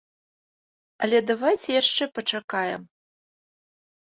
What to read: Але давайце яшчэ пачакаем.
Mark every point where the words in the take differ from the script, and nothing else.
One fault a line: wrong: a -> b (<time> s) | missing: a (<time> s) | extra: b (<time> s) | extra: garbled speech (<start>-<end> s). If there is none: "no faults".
no faults